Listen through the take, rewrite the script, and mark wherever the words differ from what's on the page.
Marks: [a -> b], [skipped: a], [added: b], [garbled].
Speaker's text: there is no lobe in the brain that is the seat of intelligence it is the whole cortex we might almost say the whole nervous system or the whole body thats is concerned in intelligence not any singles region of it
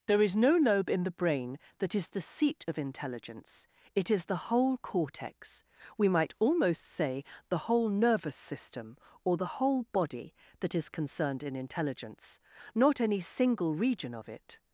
there is no lobe in the brain that is the seat of intelligence it is the whole cortex we might almost say the whole nervous system or the whole body [thats -> that] is concerned in intelligence not any [singles -> single] region of it